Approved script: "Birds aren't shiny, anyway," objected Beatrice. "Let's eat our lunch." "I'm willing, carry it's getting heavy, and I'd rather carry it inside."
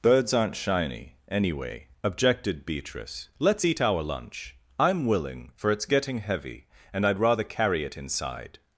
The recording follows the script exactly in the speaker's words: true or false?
false